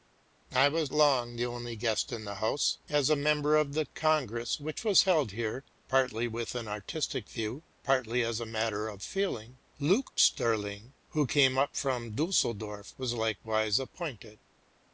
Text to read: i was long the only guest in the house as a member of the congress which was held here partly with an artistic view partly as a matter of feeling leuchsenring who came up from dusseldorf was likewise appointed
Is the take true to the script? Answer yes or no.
yes